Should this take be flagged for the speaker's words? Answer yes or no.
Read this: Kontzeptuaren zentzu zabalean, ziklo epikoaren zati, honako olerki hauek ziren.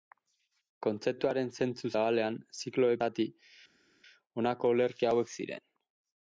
yes